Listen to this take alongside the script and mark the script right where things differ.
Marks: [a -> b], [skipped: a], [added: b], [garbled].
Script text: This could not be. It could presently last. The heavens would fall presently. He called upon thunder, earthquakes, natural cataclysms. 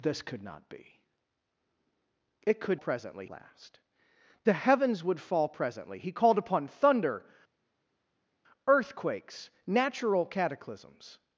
This could not be. It could presently last. The heavens would fall presently. He called upon thunder, earthquakes, natural cataclysms.